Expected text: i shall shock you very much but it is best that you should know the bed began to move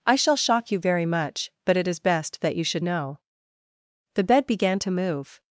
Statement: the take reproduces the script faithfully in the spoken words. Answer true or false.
true